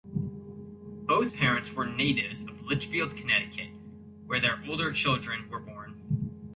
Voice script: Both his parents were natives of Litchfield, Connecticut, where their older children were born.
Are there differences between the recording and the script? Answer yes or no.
yes